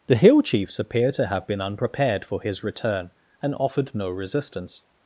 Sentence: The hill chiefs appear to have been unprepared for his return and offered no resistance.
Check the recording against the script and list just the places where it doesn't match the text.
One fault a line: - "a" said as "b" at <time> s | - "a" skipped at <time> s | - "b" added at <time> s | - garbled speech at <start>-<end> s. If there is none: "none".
none